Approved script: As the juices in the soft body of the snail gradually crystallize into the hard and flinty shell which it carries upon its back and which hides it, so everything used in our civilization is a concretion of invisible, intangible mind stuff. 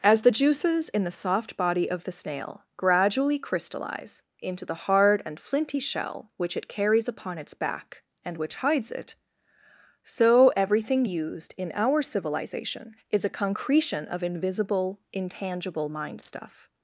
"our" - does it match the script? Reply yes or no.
yes